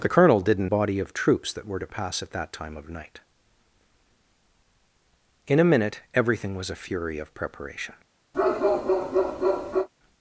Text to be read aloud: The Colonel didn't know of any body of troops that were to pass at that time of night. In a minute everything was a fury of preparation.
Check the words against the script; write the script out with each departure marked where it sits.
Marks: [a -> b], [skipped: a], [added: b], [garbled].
The Colonel didn't [skipped: know of any] body of troops that were to pass at that time of night. In a minute everything was a fury of preparation.